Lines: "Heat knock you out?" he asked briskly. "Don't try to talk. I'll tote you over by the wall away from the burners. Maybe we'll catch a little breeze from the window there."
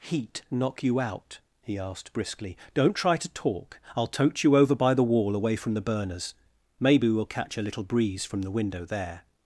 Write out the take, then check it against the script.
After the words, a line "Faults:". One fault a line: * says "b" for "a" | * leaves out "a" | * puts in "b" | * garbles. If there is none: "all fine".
"Heat knock you out?" he asked briskly. "Don't try to talk. I'll tote you over by the wall away from the burners. Maybe we'll catch a little breeze from the window there."
Faults:
all fine